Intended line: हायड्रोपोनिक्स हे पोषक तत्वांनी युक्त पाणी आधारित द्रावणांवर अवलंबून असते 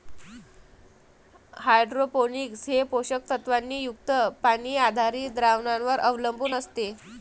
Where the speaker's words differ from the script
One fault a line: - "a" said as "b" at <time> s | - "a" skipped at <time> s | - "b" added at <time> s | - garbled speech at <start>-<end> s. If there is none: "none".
none